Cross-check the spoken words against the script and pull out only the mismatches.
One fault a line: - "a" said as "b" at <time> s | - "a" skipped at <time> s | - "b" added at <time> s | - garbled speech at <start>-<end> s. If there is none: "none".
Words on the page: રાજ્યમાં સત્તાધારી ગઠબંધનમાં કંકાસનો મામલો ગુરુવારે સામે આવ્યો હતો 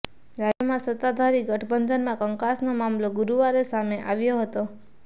none